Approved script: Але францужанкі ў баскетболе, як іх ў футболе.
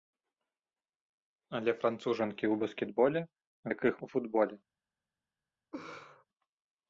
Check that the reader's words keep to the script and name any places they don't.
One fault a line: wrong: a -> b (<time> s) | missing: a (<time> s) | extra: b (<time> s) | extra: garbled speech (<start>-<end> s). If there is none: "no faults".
no faults